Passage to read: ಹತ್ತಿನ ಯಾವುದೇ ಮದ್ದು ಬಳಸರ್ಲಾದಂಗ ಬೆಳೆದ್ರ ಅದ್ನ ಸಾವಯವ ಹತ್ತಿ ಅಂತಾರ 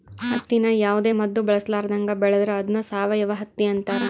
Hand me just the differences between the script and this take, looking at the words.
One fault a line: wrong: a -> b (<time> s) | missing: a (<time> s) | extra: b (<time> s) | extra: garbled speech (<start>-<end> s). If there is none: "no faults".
no faults